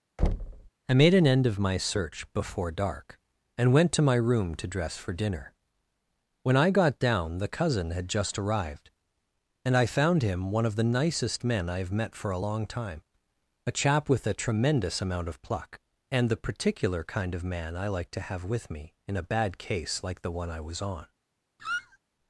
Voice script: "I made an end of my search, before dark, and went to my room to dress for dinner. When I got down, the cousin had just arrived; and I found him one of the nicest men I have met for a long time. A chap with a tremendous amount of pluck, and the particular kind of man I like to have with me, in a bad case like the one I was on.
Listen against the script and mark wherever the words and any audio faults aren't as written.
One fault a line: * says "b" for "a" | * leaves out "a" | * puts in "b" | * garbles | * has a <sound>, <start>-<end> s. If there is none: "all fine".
* has a thud, 0.2-0.7 s
* has a squeak, 21.6-22.0 s